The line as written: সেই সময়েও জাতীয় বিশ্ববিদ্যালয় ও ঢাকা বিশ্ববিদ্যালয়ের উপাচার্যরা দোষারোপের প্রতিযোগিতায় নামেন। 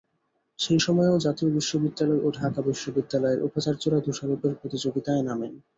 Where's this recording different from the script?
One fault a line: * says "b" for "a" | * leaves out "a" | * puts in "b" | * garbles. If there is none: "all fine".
all fine